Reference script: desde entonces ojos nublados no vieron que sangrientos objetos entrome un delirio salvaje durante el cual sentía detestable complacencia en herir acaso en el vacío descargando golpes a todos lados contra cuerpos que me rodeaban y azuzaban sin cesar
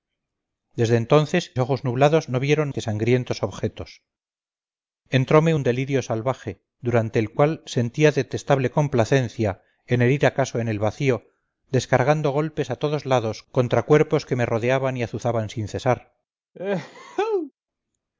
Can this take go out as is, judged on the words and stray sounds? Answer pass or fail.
fail